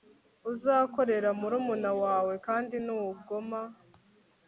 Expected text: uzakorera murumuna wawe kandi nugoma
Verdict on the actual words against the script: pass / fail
pass